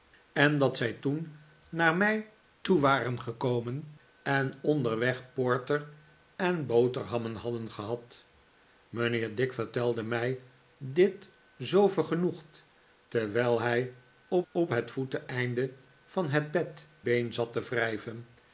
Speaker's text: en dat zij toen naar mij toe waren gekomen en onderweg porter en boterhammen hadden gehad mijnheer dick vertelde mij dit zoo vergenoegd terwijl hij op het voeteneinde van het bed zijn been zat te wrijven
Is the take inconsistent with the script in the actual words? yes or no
yes